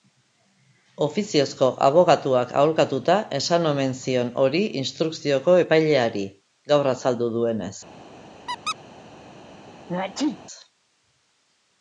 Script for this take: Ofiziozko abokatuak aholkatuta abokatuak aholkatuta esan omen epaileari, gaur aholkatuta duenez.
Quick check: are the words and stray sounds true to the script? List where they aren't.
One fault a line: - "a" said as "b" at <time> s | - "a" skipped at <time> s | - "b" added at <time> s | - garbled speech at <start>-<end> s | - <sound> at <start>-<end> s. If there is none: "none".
- "abokatuak aholkatuta esan omen" said as "esan omen zion hori instrukzioko" at 3.4 s
- "aholkatuta" said as "azaldu" at 7.0 s
- squeak at 8.5-8.8 s
- sneeze at 9.9-10.4 s